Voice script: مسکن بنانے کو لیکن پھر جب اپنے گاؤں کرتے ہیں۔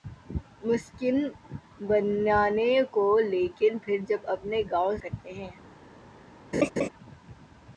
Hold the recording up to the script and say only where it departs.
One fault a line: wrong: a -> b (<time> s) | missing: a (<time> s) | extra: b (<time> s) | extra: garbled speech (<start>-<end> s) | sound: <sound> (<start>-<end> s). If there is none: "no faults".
sound: laugh (6.5-6.9 s)